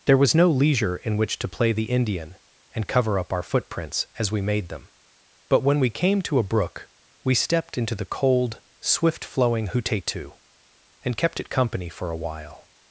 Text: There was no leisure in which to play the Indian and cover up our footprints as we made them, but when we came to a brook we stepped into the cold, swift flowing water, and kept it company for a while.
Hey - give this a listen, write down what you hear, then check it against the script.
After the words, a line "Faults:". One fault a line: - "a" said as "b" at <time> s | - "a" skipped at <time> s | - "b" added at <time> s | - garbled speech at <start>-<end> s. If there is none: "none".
There was no leisure in which to play the Indian and cover up our footprints as we made them, but when we came to a brook we stepped into the cold, swift flowing hutetu, and kept it company for a while.
Faults:
- "water" said as "hutetu" at 9.7 s